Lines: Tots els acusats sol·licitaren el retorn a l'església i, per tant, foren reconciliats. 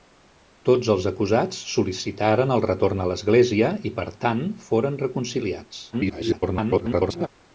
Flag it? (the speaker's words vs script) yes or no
yes